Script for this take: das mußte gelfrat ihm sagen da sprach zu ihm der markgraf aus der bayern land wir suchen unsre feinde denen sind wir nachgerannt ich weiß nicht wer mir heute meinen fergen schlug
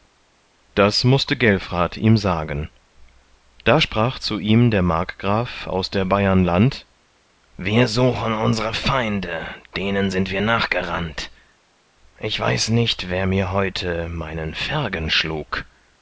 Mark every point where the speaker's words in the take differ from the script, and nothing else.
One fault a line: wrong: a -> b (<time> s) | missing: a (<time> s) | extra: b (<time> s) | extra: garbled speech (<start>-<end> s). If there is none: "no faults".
no faults